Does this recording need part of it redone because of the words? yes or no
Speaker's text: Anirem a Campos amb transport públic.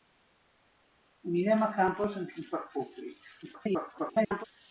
yes